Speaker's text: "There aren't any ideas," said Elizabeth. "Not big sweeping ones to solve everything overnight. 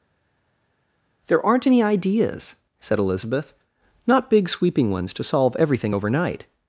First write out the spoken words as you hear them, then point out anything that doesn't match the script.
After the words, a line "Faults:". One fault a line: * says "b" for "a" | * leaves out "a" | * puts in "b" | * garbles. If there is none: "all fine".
"There aren't any ideas," said Elizabeth. "Not big sweeping ones to solve everything overnight.
Faults:
all fine